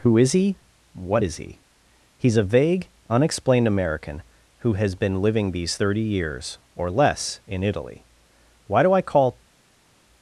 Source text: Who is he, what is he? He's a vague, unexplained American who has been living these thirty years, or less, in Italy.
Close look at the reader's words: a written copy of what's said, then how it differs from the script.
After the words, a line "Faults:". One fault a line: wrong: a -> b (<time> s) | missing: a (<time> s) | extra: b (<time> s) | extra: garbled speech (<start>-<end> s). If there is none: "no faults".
Who is he, what is he? He's a vague, unexplained American who has been living these thirty years, or less, in Italy. Why do I call
Faults:
extra: Why do I call (8.7 s)